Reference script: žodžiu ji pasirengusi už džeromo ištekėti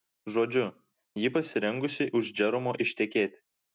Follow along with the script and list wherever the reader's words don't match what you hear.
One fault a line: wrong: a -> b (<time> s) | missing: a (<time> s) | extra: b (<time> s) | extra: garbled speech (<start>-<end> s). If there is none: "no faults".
no faults